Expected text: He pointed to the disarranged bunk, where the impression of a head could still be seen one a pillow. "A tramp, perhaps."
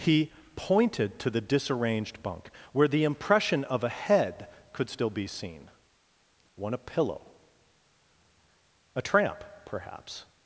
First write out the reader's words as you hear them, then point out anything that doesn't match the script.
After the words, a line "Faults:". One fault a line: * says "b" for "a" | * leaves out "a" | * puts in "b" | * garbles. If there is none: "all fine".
He pointed to the disarranged bunk, where the impression of a head could still be seen one a pillow. "A tramp, perhaps."
Faults:
all fine